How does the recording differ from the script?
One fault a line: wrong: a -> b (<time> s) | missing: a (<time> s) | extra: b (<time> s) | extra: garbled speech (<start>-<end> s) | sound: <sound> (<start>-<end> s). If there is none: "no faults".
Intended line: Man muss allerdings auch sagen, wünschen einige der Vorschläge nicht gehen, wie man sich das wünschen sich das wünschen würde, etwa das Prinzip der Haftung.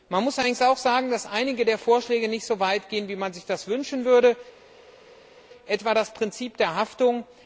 wrong: wünschen -> dass (1.1 s)
extra: so weit (2.5 s)
missing: sich das wünschen (4.0 s)